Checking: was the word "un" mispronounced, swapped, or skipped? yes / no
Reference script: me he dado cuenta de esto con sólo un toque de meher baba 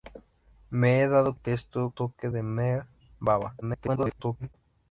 yes